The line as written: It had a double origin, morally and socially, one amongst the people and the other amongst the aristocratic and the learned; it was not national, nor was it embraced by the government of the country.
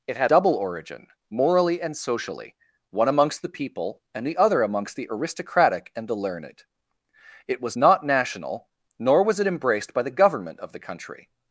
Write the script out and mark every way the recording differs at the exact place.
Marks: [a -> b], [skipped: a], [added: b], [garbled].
It had [skipped: a] double origin, morally and socially, one amongst the people and the other amongst the aristocratic and the learned; it was not national, nor was it embraced by the government of the country.